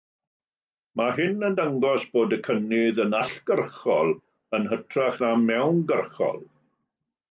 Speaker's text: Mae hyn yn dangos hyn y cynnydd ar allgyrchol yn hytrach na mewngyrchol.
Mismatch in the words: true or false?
true